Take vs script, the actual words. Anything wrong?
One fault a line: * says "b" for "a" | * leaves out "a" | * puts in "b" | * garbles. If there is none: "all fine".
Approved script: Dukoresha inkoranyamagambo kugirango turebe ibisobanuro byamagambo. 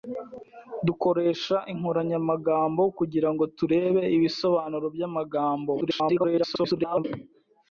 * garbles